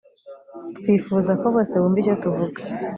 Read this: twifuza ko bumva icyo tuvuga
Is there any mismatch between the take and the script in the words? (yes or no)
yes